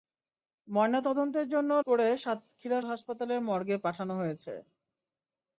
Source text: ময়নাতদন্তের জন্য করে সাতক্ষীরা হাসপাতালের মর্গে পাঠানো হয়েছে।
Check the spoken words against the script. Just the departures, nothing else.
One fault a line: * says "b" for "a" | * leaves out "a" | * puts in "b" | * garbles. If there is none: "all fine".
all fine